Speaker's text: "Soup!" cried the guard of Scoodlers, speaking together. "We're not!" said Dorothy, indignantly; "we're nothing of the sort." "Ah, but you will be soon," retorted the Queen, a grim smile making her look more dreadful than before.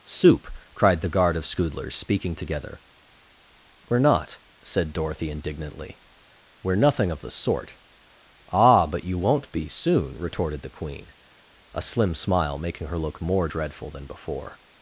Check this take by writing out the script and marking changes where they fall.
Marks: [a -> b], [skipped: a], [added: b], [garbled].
"Soup!" cried the guard of Scoodlers, speaking together. "We're not!" said Dorothy, indignantly; "we're nothing of the sort." "Ah, but you [will -> won't] be soon," retorted the Queen, a [grim -> slim] smile making her look more dreadful than before.